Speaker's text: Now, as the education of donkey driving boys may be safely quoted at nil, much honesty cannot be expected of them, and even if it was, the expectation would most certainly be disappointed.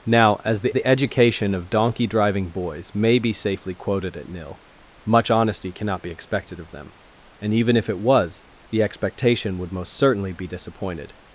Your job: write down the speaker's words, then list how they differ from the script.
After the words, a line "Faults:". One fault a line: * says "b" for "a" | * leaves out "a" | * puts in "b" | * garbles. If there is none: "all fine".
Now, as the the education of donkey driving boys may be safely quoted at nil, much honesty cannot be expected of them, and even if it was, the expectation would most certainly be disappointed.
Faults:
* puts in "the"